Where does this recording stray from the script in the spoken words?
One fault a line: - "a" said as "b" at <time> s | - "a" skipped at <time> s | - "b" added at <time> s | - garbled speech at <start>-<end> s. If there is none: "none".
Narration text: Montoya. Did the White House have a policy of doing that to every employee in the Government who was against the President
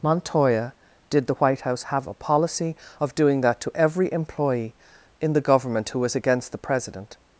none